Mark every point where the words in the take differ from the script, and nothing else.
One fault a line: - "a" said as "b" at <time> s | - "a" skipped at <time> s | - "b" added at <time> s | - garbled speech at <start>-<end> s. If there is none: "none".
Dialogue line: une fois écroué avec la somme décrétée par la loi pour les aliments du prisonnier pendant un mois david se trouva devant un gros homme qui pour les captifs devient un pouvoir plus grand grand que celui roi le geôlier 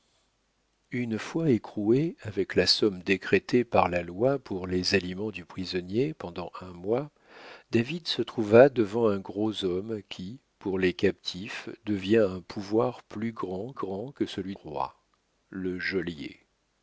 none